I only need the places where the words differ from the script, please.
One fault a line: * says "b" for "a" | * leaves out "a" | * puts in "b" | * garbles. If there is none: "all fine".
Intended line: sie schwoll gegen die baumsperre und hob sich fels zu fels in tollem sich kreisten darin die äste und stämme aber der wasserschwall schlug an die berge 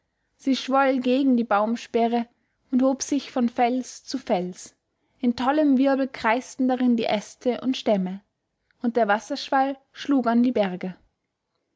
* puts in "von"
* says "wirbel" for "sich"
* says "und" for "aber"